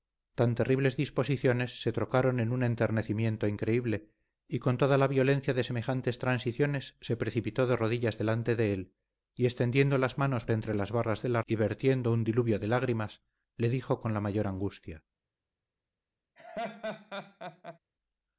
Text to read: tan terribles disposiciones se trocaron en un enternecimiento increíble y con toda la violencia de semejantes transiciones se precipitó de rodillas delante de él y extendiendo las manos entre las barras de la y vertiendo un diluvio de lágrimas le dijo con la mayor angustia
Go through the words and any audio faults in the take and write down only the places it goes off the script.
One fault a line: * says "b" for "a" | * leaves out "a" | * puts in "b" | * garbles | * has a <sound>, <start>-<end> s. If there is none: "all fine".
* has a laugh, 16.4-17.8 s